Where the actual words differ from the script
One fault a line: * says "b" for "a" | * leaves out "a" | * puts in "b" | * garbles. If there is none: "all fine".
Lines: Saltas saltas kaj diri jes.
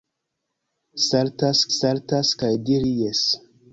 all fine